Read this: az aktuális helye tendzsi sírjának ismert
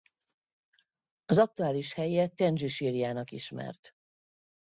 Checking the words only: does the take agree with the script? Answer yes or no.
yes